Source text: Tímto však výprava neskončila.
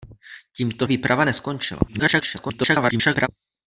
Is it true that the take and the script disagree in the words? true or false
true